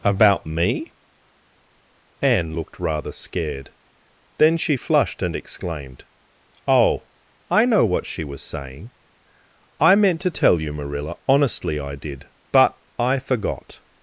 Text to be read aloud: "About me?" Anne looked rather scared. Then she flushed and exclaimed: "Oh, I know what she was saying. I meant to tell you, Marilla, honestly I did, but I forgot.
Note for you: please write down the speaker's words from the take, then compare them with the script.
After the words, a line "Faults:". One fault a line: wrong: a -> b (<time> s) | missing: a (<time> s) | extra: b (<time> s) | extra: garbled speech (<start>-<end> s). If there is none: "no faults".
"About me?" Anne looked rather scared. Then she flushed and exclaimed: "Oh, I know what she was saying. I meant to tell you, Marilla, honestly I did, but I forgot.
Faults:
no faults